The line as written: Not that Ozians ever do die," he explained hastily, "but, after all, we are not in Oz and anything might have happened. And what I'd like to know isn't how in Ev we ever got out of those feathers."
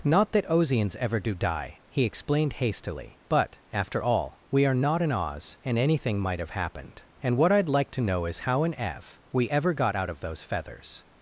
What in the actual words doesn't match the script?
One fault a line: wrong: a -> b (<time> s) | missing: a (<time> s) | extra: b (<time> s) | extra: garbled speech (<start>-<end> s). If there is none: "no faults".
wrong: isn't -> is (8.3 s)